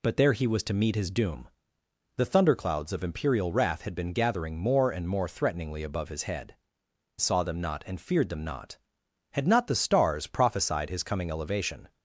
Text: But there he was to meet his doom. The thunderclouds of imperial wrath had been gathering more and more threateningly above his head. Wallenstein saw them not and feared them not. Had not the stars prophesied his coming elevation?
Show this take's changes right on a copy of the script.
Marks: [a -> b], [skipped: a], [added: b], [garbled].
But there he was to meet his doom. The thunderclouds of imperial wrath had been gathering more and more threateningly above his head. [skipped: Wallenstein] saw them not and feared them not. Had not the stars prophesied his coming elevation?